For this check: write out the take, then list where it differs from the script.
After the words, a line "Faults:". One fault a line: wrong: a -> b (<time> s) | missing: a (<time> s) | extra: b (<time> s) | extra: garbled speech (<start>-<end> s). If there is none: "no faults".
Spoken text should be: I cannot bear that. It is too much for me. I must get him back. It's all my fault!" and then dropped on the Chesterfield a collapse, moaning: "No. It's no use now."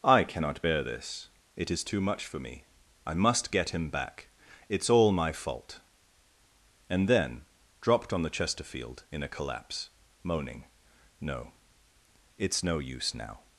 I cannot bear this. It is too much for me. I must get him back. It's all my fault!" and then dropped on the Chesterfield in a collapse, moaning: "No. It's no use now."
Faults:
wrong: that -> this (0.8 s)
extra: in (9.1 s)